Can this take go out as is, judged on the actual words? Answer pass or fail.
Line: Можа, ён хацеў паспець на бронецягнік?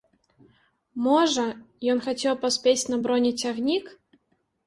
pass